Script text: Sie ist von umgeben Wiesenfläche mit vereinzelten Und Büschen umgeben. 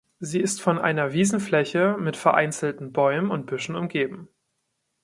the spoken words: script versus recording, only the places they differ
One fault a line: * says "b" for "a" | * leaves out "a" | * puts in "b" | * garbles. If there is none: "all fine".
* says "einer" for "umgeben"
* puts in "Bäumen"